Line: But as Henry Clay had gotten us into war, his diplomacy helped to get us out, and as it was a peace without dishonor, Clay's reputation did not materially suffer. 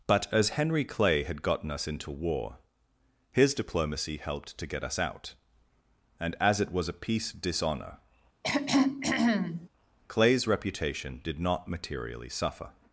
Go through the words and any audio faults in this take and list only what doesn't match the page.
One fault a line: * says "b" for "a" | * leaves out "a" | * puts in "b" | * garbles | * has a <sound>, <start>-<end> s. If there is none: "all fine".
* leaves out "without"
* has a throat clearing, 8.4-9.7 s